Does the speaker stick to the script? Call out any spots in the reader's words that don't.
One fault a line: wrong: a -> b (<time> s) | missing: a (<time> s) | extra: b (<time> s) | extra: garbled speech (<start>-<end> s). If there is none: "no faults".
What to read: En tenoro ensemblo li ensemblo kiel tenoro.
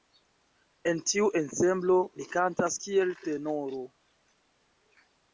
wrong: tenoro -> tiu (1.1 s)
wrong: ensemblo -> kantas (2.3 s)